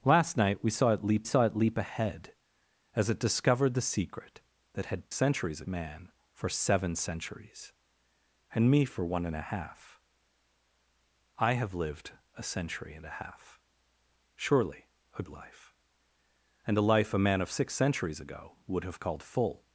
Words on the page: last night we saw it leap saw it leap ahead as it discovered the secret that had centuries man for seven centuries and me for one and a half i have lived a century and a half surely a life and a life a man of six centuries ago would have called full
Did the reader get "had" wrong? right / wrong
right